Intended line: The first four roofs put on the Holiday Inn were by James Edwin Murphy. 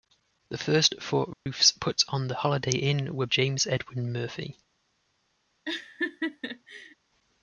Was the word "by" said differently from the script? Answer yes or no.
yes